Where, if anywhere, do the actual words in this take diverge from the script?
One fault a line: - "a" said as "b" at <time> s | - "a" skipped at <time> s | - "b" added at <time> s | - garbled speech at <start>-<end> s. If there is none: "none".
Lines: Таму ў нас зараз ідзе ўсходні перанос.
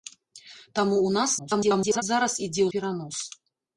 - garbled speech at 1.4-2.0 s
- "ўсходні" skipped at 2.7 s